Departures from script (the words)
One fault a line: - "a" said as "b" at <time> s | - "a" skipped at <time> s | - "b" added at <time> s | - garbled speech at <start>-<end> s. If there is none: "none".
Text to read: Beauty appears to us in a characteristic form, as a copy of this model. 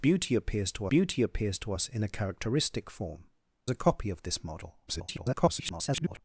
- "beauty appears to" added at 0.9 s
- "as" skipped at 3.3 s
- garbled speech at 4.9-6.2 s